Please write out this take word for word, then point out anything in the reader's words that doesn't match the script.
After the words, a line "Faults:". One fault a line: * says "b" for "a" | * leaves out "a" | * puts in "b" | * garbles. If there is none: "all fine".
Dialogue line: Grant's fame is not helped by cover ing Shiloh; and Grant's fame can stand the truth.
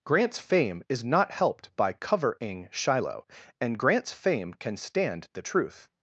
Grant's fame is not helped by cover ing Shiloh; and Grant's fame can stand the truth.
Faults:
all fine